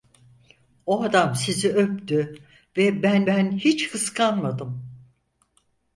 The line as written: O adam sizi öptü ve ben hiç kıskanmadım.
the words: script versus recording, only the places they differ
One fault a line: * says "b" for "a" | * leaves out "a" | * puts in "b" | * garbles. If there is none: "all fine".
* puts in "ben"